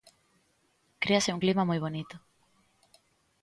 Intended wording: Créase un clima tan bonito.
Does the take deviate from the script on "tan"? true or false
true